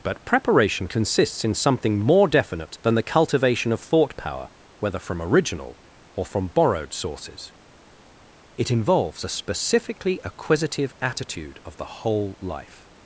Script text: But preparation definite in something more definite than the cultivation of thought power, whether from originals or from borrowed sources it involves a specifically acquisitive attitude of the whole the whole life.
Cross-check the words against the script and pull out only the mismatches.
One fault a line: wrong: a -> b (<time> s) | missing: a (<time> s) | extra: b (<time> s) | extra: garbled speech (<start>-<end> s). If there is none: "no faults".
wrong: definite -> consists (0.9 s)
wrong: originals -> original (5.2 s)
missing: the whole (12.4 s)